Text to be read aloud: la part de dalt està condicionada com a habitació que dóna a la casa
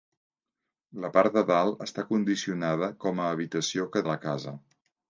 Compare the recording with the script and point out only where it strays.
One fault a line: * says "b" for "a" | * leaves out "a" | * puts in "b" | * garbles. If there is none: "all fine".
* leaves out "dóna"